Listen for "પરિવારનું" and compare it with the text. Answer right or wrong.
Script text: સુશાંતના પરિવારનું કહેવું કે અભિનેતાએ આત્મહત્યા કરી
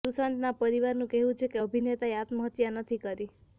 right